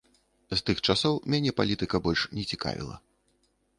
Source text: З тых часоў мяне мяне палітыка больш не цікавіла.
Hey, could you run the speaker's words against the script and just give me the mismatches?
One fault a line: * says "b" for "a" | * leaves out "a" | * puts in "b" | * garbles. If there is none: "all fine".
* leaves out "мяне"